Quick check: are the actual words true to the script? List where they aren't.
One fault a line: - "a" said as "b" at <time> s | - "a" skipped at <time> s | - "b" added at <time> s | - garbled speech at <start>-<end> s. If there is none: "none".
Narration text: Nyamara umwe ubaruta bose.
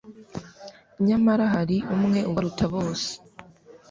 - "hari" added at 1.5 s